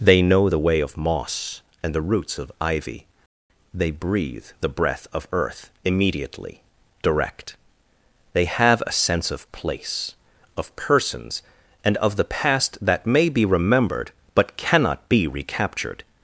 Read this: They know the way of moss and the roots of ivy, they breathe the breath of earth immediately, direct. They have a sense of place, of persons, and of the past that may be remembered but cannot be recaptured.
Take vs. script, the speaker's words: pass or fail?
pass